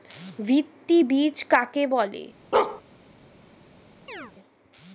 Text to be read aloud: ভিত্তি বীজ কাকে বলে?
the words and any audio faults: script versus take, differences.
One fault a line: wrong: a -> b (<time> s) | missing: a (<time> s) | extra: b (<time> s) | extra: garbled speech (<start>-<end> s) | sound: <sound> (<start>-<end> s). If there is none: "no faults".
sound: bark (2.5-2.8 s)
sound: chirp (4.1-4.3 s)